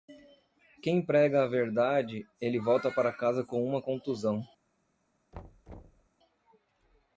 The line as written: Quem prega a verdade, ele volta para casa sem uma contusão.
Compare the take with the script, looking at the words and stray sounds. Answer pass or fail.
fail